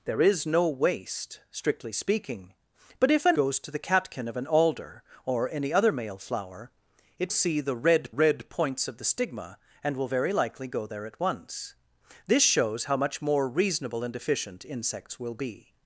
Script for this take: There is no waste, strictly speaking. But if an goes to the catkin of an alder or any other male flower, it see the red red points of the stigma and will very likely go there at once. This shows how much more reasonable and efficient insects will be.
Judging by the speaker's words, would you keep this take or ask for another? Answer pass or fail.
pass